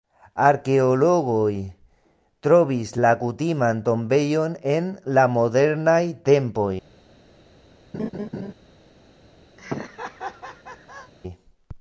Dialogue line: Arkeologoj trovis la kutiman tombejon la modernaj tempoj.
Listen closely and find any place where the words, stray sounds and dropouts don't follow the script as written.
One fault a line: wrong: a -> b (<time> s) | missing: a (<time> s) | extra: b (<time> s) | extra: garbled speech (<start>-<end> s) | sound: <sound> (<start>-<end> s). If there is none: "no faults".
extra: en (4.8 s)
sound: laugh (7.9-8.5 s)
sound: laugh (9.6-11.1 s)